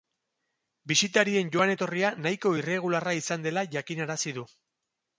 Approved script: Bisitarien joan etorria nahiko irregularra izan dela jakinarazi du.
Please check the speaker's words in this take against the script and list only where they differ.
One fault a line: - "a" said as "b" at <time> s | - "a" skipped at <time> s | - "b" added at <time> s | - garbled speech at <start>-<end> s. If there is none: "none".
none